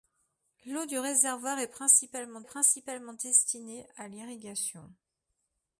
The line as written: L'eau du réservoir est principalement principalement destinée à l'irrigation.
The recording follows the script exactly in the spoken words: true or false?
true